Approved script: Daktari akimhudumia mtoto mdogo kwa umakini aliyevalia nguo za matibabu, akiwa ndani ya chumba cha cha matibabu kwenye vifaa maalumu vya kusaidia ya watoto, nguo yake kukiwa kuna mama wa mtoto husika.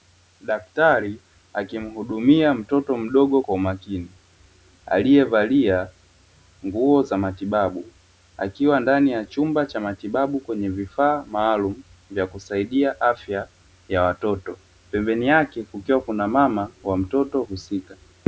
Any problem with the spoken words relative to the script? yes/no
yes